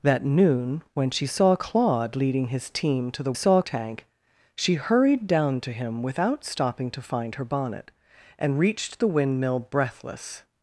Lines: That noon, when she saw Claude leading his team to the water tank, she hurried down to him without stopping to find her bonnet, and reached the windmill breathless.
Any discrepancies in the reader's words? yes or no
yes